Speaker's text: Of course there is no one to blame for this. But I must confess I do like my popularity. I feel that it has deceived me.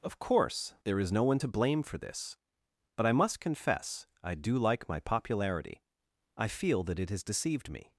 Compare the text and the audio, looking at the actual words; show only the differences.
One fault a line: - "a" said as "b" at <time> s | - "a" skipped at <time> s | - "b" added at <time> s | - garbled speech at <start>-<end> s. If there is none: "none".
none